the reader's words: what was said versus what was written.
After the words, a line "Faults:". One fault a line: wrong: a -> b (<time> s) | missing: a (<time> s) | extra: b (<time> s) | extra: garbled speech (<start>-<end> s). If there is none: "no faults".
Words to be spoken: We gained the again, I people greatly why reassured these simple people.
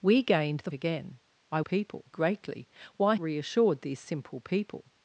We gained the again, I people greatly why reassured these simple people.
Faults:
no faults